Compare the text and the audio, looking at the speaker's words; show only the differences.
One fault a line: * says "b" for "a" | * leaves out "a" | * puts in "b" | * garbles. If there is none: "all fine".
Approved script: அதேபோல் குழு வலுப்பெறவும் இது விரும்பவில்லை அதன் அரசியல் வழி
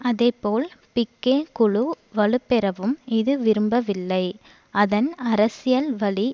* puts in "பிக்கே"